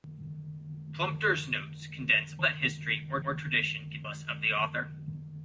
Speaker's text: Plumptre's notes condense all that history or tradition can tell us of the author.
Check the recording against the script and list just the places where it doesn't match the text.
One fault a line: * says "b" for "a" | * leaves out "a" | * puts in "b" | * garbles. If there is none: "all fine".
* leaves out "all"
* puts in "or"
* leaves out "tell"